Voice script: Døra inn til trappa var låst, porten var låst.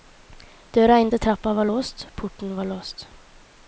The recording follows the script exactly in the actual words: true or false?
true